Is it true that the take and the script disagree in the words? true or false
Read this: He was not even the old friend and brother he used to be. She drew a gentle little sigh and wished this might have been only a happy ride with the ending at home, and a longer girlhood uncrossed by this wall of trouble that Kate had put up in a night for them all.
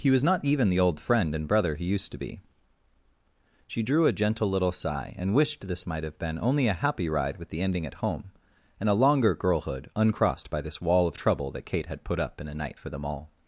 false